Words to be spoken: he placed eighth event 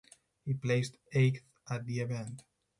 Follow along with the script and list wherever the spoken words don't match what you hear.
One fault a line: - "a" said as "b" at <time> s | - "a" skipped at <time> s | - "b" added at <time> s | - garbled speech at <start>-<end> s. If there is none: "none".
- "at the" added at 1.7 s